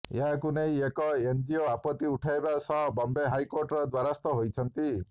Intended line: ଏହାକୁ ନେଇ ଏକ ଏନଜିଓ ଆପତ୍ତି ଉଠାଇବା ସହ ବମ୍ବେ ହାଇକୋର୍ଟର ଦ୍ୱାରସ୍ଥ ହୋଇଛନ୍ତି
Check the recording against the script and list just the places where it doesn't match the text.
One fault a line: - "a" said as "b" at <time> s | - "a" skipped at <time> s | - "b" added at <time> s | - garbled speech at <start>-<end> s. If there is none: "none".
none